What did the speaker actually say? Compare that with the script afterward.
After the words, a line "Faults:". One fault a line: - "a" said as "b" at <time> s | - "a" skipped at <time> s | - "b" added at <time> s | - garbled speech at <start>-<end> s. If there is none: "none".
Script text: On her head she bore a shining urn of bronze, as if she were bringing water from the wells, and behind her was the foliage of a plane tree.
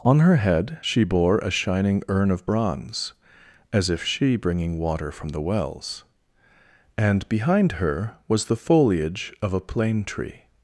On her head she bore a shining urn of bronze, as if she bringing water from the wells, and behind her was the foliage of a plane tree.
Faults:
- "were" skipped at 4.4 s